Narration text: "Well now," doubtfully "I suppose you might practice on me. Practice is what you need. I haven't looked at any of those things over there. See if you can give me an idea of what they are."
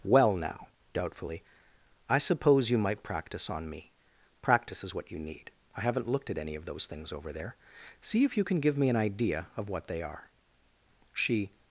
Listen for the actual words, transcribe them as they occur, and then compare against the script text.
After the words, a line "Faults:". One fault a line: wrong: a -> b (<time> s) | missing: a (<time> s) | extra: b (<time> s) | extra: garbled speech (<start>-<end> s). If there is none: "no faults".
"Well now," doubtfully "I suppose you might practice on me. Practice is what you need. I haven't looked at any of those things over there. See if you can give me an idea of what they are." She
Faults:
extra: She (11.1 s)